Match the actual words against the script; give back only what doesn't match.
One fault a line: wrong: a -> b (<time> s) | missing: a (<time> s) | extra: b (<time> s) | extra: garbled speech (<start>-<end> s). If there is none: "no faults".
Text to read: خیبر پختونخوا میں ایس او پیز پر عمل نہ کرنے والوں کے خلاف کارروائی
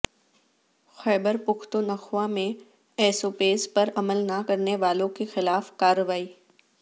no faults